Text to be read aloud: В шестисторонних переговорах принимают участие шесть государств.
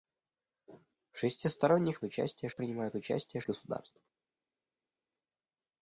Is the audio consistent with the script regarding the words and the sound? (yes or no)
no